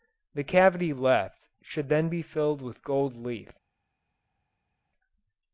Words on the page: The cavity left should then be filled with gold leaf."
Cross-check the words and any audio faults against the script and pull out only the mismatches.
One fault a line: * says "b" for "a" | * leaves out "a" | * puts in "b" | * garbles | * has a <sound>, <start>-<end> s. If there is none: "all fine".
all fine